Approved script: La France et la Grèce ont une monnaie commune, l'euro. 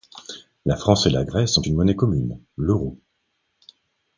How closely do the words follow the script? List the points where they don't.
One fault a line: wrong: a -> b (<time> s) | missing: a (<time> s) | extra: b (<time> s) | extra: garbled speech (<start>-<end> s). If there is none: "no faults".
no faults